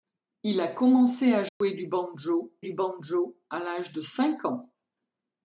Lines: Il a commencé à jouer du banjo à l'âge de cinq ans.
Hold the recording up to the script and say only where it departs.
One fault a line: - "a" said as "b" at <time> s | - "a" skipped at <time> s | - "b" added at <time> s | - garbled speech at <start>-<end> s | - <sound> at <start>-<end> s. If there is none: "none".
- dropout at 1.5-1.6 s
- "du banjo" added at 2.6 s